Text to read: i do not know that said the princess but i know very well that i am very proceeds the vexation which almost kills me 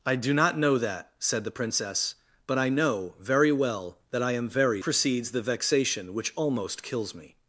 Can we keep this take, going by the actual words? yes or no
yes